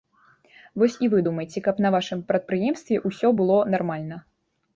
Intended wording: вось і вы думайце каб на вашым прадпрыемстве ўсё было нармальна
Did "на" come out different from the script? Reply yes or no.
no